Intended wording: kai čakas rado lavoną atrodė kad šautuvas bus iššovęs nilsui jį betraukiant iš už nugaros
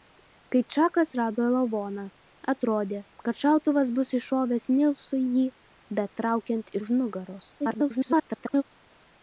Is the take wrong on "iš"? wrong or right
wrong